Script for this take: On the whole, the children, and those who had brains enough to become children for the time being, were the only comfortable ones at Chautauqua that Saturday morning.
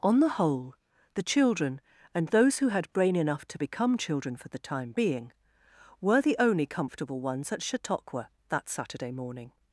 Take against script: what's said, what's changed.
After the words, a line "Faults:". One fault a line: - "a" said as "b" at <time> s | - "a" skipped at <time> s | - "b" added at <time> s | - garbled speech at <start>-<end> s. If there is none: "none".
On the whole, the children, and those who had brain enough to become children for the time being, were the only comfortable ones at Chautauqua that Saturday morning.
Faults:
- "brains" said as "brain" at 2.9 s